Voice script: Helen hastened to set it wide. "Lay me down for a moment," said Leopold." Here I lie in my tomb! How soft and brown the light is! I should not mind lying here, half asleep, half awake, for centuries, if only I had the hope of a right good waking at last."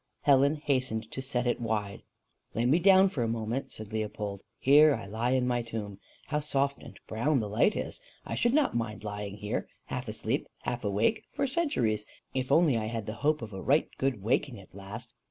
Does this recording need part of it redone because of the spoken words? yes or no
no